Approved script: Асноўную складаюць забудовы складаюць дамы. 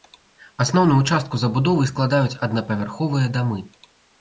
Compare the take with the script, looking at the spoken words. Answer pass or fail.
fail